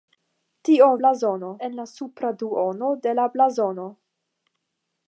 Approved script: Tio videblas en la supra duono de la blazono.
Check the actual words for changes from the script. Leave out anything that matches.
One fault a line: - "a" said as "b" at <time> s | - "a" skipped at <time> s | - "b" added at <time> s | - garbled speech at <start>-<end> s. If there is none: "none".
- "videblas" said as "blazono" at 1.0 s